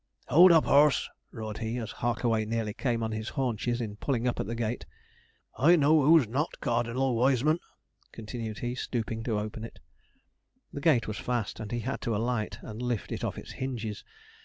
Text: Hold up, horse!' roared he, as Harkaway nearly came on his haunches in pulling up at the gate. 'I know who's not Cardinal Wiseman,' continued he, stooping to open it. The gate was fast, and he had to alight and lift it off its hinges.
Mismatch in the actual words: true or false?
false